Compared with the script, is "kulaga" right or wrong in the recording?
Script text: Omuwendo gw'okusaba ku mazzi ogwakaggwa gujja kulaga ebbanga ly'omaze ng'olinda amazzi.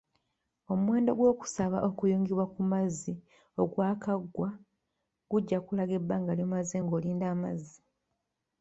right